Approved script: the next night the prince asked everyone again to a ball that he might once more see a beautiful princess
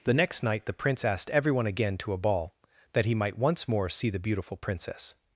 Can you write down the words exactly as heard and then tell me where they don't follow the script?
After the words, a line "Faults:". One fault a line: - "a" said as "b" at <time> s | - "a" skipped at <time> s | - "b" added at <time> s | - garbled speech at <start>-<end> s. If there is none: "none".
the next night the prince asked everyone again to a ball that he might once more see the beautiful princess
Faults:
- "a" said as "the" at 4.1 s